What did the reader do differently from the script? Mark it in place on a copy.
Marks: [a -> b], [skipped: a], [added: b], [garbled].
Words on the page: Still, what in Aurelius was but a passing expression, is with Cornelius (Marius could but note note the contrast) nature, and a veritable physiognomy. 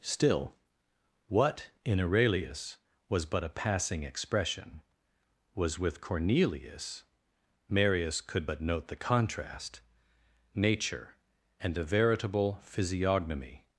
Still, what in Aurelius was but a passing expression, [is -> was] with Cornelius (Marius could but note [skipped: note] the contrast) nature, and a veritable physiognomy.